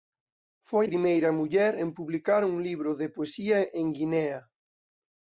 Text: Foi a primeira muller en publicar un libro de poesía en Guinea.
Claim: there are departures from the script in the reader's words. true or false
true